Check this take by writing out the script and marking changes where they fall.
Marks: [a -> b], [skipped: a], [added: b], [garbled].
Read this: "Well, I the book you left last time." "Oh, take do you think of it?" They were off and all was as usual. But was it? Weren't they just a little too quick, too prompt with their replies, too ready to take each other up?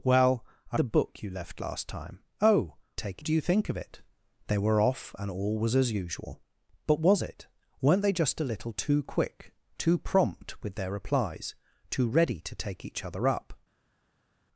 "Well, I the book you left last time." "Oh, take do you think of it?" They were off and all was as usual. But was it? Weren't they just a little too quick, too prompt with their replies, too ready to take each other up?